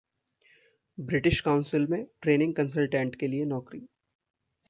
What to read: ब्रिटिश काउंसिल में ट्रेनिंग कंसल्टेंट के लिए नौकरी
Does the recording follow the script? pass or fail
pass